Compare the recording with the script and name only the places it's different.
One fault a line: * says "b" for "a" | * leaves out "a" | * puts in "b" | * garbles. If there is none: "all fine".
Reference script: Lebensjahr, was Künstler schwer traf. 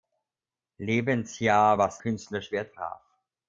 all fine